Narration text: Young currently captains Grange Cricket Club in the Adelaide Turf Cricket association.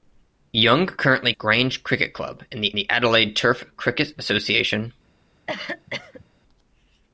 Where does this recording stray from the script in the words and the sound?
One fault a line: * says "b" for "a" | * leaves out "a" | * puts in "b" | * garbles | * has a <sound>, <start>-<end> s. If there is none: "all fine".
* leaves out "captains"
* puts in "the"
* has a cough, 5.5-6.2 s